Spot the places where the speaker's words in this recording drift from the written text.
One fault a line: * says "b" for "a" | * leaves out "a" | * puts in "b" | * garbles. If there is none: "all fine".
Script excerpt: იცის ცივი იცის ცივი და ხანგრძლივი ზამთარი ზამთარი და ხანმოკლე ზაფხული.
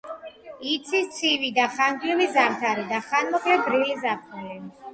* leaves out "იცის ცივი"
* leaves out "ზამთარი"
* puts in "გრილი"